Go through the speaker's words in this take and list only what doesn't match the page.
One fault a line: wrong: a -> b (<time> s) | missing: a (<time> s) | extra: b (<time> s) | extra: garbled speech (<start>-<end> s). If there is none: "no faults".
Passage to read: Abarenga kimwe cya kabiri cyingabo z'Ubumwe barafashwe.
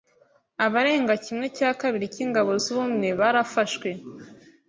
no faults